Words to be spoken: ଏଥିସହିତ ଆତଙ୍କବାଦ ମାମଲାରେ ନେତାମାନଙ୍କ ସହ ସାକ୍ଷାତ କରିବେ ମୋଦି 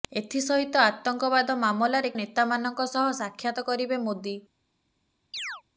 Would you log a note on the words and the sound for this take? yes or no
yes